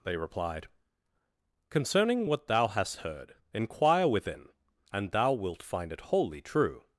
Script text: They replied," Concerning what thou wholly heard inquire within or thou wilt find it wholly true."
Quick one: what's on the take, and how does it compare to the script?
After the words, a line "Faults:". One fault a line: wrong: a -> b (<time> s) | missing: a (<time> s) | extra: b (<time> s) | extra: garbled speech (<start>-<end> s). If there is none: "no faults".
They replied," Concerning what thou hast heard inquire within and thou wilt find it wholly true."
Faults:
wrong: wholly -> hast (2.7 s)
wrong: or -> and (4.9 s)